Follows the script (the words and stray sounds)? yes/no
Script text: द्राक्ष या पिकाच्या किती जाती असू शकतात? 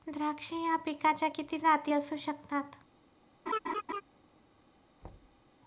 no